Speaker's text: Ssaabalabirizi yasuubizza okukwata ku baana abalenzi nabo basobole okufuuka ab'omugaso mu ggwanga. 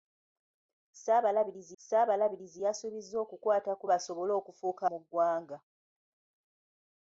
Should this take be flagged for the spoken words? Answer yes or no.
yes